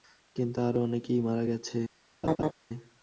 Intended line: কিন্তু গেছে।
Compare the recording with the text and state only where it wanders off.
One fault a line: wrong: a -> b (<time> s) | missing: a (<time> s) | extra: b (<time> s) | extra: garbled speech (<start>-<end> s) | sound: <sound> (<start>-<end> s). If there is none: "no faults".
extra: আরো অনেকেই মারা (0.6 s)
sound: laugh (2.2-2.5 s)